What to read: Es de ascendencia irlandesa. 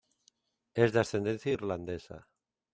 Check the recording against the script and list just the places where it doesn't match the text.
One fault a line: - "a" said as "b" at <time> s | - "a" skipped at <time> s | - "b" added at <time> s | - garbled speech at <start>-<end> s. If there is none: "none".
none